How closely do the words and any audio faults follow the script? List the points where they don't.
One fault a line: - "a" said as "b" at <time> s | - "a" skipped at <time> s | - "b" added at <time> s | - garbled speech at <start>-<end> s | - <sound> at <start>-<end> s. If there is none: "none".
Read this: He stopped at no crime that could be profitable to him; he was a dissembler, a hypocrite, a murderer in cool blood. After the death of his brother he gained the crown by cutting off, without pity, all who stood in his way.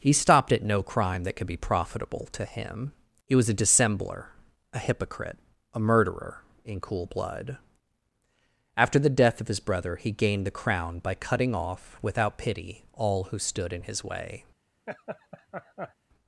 - laugh at 14.9-15.9 s